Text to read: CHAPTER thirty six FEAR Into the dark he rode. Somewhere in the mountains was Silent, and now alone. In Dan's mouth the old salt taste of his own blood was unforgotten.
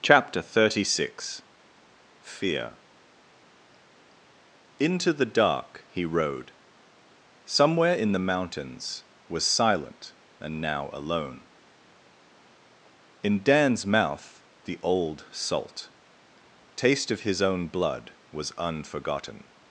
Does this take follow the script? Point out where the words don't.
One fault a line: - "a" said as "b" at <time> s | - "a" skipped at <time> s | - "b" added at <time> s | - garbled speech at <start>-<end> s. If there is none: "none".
none